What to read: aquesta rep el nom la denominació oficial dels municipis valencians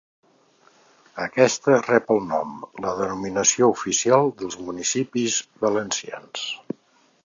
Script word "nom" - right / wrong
right